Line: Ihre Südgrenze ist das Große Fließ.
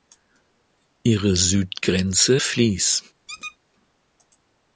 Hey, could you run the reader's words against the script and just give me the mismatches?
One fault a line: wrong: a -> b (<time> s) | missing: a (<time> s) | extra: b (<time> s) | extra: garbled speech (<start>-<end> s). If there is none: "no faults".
missing: ist das Große (2.4 s)